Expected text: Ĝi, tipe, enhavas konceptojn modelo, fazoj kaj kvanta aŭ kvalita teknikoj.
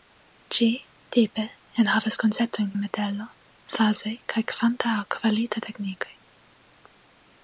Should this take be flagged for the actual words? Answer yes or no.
no